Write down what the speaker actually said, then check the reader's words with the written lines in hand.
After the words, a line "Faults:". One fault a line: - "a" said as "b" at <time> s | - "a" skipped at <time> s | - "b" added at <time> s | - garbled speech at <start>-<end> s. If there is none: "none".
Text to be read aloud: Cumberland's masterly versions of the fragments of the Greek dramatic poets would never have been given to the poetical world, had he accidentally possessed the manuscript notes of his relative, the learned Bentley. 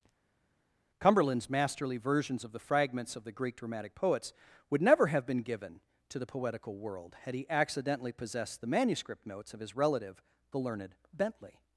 Cumberland's masterly versions of the fragments of the Greek dramatic poets would never have been given to the poetical world, had he accidentally possessed the manuscript notes of his relative, the learned Bentley.
Faults:
none